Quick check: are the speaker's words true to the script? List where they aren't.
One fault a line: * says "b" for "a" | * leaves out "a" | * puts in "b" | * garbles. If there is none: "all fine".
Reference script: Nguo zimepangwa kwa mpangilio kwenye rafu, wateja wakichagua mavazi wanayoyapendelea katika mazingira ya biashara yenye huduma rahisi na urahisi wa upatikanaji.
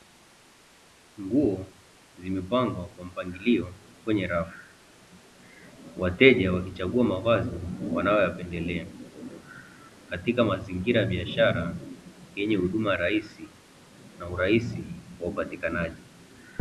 all fine